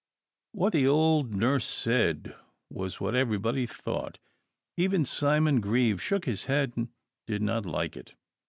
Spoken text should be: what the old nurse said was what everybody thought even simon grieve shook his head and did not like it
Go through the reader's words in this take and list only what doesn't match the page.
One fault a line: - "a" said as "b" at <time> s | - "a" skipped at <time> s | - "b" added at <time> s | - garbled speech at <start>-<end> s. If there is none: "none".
none